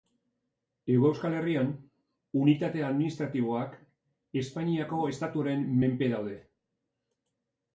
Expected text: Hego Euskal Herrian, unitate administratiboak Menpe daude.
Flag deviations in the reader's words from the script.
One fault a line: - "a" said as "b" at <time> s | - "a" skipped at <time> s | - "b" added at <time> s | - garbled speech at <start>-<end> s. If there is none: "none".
- "Espainiako estatuaren" added at 4.4 s